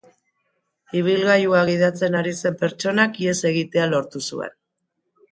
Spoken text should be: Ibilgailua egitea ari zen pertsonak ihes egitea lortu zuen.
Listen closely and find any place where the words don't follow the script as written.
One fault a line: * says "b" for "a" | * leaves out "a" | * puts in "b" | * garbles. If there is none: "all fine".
* says "gidatzen" for "egitea"